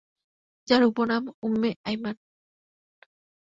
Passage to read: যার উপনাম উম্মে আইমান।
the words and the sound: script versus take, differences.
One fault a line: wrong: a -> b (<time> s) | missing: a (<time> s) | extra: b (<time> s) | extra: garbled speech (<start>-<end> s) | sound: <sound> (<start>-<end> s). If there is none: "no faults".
no faults